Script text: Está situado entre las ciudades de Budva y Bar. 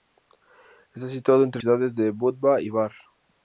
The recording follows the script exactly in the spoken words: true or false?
false